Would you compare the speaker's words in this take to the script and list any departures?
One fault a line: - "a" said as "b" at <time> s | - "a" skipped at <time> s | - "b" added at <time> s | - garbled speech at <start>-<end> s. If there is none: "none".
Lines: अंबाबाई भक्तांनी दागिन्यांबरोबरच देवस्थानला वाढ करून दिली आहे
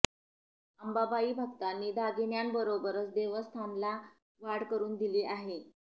none